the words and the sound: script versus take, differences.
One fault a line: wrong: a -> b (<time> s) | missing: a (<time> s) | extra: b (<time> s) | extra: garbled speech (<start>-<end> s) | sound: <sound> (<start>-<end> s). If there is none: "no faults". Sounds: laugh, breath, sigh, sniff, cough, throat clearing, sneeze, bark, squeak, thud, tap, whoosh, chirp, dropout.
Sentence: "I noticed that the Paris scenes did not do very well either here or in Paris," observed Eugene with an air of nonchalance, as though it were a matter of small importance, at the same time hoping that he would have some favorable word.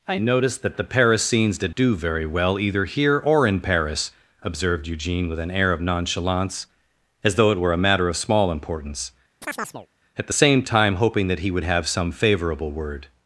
missing: not (1.8 s)
sound: chirp (9.4-9.9 s)